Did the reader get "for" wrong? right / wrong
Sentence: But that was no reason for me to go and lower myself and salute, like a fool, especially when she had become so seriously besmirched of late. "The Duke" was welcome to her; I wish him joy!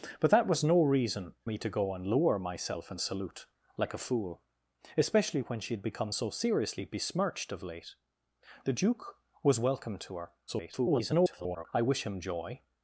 wrong